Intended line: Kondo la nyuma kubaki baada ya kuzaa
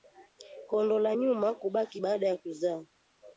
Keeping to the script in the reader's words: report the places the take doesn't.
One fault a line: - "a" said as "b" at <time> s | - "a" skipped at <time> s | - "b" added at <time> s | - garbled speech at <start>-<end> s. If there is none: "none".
none